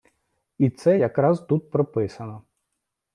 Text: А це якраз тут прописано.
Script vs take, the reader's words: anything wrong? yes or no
yes